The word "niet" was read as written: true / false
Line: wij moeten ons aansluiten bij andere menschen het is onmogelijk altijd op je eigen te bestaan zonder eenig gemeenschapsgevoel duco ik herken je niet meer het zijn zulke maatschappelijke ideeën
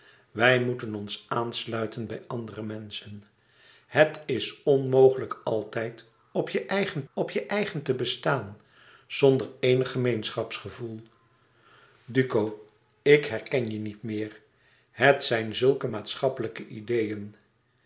true